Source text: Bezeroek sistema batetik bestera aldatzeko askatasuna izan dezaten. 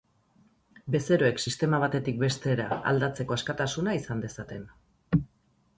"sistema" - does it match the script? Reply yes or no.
yes